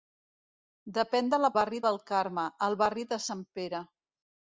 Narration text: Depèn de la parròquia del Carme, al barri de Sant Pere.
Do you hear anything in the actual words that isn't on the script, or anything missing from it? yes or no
yes